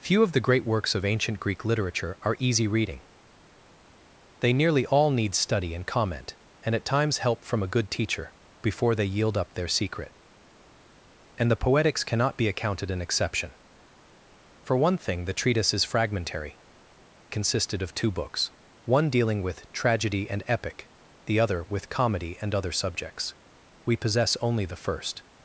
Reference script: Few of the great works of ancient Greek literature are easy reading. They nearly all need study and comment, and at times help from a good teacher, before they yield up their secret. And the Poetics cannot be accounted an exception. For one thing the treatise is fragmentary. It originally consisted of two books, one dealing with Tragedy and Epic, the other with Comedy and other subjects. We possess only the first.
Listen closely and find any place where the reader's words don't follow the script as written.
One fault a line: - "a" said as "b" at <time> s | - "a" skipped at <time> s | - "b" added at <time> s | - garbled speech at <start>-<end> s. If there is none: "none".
- "It originally" skipped at 16.6 s